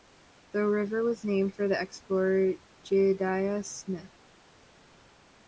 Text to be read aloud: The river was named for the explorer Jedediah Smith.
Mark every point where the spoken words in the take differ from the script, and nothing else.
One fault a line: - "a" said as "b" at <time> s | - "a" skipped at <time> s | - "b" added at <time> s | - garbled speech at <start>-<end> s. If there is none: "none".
none